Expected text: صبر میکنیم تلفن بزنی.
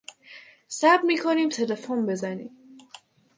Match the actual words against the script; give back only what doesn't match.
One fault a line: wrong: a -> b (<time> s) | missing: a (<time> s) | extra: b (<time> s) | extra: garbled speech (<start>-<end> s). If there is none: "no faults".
no faults